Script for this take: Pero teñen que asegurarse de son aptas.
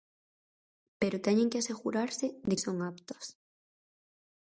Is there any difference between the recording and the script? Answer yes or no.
no